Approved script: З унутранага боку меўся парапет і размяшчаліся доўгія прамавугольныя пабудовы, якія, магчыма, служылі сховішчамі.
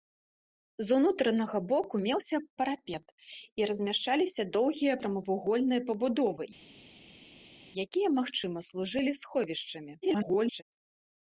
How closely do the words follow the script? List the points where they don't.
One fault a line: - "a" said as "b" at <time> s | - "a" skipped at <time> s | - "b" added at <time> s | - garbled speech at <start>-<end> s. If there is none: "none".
- garbled speech at 10.0-10.6 s